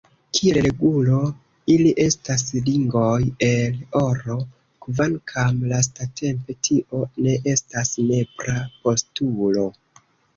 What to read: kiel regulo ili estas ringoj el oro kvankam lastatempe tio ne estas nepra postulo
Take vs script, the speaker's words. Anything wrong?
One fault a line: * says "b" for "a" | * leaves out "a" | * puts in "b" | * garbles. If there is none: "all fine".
all fine